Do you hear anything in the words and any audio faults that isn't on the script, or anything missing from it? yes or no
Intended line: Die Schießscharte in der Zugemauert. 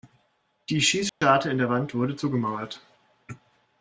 yes